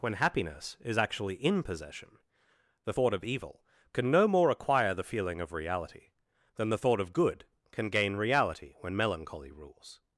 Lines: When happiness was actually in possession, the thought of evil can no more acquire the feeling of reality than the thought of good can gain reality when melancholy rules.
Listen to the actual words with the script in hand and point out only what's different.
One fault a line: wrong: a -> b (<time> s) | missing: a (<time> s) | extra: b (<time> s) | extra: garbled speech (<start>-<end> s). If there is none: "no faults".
wrong: was -> is (0.8 s)